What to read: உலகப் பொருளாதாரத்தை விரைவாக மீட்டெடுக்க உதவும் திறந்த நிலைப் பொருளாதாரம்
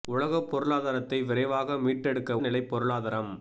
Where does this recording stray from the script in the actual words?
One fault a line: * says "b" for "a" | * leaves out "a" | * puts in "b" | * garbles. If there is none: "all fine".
* leaves out "உதவும் திறந்த"